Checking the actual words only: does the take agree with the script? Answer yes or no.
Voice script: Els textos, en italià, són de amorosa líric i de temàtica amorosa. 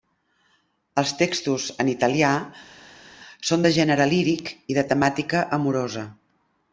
no